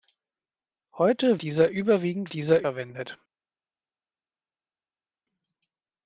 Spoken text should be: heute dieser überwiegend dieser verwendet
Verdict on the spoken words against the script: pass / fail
pass